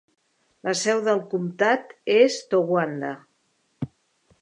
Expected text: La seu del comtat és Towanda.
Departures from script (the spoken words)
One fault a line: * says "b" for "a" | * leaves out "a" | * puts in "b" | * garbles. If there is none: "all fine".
all fine